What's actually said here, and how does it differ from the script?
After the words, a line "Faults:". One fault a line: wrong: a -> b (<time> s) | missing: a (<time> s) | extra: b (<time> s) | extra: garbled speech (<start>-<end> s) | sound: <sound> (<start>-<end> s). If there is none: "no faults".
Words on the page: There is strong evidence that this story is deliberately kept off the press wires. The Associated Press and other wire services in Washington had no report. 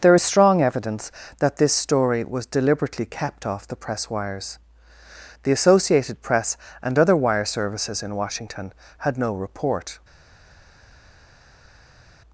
There is strong evidence that this story was deliberately kept off the press wires. The Associated Press and other wire services in Washington had no report.
Faults:
wrong: is -> was (2.2 s)